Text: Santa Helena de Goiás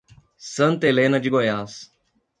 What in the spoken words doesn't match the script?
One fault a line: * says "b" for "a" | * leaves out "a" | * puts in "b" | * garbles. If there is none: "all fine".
all fine